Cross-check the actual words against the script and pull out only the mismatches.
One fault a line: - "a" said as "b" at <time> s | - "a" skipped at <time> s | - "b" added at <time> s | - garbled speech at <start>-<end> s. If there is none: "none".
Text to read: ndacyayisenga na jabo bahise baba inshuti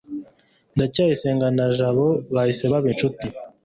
none